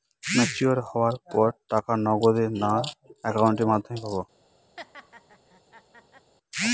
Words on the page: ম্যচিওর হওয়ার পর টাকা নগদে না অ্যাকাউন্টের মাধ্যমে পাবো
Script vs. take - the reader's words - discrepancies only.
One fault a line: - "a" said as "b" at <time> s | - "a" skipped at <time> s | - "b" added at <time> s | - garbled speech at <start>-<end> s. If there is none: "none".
none